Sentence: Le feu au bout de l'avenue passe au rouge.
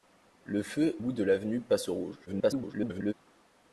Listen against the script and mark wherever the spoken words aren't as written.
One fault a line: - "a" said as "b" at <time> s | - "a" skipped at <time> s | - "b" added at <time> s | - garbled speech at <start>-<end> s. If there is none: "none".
- "au" skipped at 1.0 s
- garbled speech at 2.3-3.1 s